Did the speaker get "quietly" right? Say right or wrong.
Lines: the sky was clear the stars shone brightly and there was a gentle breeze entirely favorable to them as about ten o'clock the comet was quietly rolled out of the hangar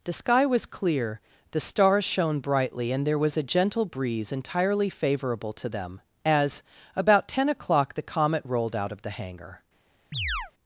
wrong